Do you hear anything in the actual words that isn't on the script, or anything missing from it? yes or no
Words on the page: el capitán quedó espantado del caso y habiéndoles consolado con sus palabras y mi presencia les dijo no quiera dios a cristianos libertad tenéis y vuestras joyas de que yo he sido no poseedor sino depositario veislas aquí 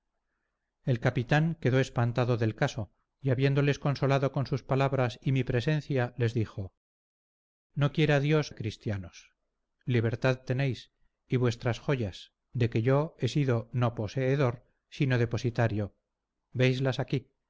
no